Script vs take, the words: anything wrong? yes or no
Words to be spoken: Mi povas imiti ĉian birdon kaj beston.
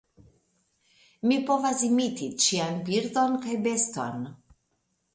no